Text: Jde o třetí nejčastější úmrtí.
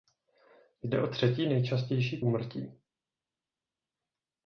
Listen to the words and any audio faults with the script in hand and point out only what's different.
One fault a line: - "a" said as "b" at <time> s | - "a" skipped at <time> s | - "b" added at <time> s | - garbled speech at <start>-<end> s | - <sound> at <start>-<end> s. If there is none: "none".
none